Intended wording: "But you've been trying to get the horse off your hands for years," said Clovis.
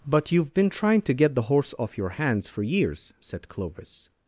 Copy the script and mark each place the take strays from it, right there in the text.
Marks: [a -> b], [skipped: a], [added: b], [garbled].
"But you've been trying to get the horse off your hands for years," said Clovis.